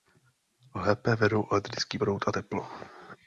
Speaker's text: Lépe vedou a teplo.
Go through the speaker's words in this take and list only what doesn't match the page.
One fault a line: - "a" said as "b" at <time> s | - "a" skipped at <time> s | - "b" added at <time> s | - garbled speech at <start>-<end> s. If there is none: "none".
- "elektrický proud" added at 1.5 s